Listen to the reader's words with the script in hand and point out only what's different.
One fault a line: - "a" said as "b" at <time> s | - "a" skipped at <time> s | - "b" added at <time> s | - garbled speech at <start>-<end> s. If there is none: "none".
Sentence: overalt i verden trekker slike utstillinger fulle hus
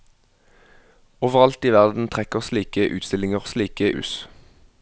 - "fulle" said as "slike" at 3.5 s